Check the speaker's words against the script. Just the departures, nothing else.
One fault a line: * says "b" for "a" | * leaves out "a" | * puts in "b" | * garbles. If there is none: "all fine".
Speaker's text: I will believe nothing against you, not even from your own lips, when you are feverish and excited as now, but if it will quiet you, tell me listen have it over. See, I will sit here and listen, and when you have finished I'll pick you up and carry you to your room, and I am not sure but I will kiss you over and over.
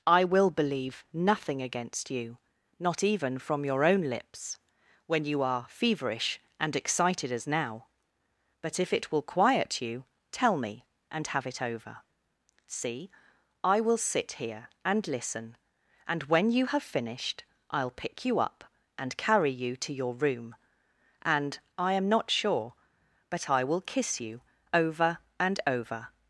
* says "and" for "listen"